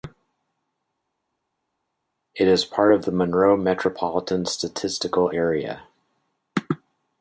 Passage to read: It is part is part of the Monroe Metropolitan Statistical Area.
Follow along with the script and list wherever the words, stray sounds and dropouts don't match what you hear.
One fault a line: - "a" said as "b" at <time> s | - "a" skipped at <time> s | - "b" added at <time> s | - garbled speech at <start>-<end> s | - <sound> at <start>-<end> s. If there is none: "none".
- "is part" skipped at 2.9 s